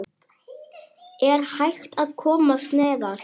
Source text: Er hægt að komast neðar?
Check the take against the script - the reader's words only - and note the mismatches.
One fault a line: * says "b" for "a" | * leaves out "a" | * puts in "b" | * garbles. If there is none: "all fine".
all fine